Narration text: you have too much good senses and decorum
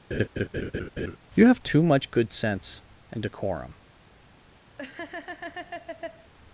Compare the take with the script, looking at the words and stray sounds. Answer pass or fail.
fail